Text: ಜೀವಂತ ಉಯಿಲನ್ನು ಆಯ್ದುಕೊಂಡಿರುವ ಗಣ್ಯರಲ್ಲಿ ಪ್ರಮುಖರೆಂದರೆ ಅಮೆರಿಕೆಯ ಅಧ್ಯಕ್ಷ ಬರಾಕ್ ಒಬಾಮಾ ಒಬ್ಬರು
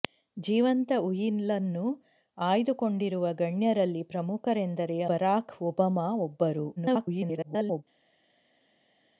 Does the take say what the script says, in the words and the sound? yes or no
no